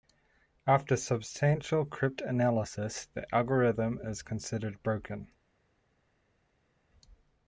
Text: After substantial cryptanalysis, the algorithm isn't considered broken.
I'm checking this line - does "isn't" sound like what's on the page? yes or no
no